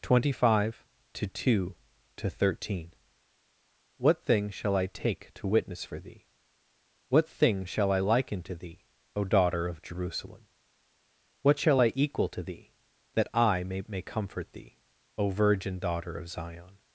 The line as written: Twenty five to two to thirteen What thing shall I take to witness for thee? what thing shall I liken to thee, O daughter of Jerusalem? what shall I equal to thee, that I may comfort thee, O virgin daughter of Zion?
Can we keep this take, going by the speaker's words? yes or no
no